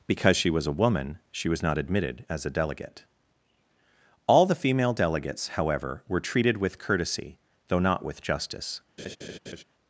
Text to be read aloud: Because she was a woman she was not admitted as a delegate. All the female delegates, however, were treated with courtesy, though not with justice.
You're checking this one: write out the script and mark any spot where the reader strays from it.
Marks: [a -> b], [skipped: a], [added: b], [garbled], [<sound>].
Because she was a woman she was not admitted as a delegate. All the female delegates, however, were treated with courtesy, though not with justice. [laugh]